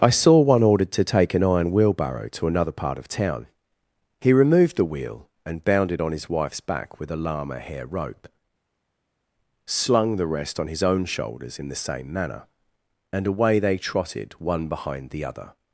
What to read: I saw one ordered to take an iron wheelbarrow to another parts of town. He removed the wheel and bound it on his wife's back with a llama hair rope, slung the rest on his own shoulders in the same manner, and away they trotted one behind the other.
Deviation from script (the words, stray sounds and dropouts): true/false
true